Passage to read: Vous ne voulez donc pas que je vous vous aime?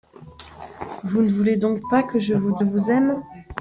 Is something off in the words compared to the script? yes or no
no